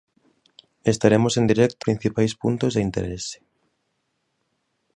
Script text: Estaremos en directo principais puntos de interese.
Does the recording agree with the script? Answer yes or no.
yes